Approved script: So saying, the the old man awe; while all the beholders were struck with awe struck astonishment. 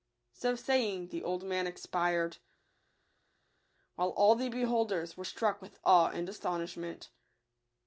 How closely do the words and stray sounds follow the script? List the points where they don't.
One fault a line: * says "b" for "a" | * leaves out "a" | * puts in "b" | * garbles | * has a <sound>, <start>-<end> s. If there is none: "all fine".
* leaves out "the"
* says "expired" for "awe"
* says "and" for "struck"